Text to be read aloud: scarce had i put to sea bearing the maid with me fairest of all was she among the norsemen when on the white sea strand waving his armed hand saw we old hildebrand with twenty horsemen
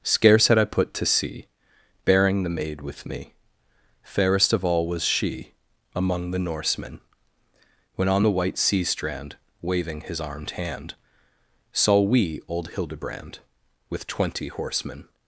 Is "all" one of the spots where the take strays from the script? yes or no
no